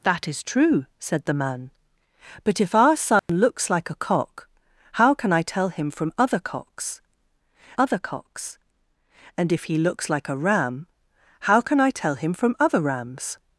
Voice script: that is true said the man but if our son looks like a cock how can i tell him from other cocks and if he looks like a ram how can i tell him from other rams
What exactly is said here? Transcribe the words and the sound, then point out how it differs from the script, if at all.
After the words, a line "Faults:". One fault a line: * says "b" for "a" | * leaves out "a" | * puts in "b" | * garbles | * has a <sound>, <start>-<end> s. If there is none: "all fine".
that is true said the man but if our son looks like a cock how can i tell him from other cocks other cocks and if he looks like a ram how can i tell him from other rams
Faults:
* has a dropout, 3.2-3.3 s
* puts in "other cocks"